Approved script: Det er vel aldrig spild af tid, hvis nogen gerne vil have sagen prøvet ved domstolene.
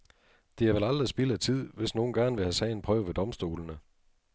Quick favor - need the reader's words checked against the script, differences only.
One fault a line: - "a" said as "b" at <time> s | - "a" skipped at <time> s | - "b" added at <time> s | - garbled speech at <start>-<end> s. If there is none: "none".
none